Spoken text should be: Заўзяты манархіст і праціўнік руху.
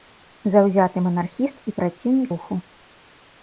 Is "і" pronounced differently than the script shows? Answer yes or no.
no